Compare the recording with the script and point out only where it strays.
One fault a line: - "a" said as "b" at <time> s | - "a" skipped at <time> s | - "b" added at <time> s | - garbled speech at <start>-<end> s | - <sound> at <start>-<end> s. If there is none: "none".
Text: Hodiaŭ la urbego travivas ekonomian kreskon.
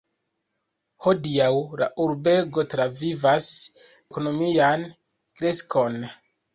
none